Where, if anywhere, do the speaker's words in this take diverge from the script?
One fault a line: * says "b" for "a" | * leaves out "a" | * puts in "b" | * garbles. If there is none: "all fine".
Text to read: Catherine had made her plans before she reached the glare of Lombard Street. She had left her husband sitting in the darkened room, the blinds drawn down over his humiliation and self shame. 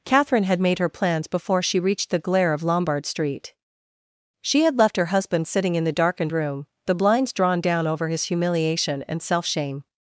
all fine